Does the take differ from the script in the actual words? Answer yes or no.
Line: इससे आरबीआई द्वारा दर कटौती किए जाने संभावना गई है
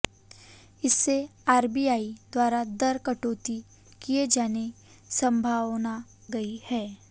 no